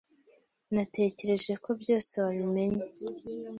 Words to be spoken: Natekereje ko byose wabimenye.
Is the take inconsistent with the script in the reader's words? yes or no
no